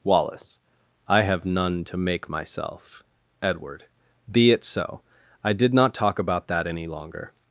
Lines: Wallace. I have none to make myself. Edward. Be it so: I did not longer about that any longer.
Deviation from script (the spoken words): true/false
true